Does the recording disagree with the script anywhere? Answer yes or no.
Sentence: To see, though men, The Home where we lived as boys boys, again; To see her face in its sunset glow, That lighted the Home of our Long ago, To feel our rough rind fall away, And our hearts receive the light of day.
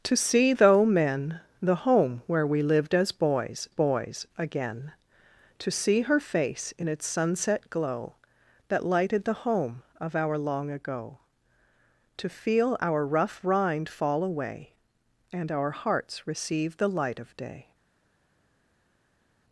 no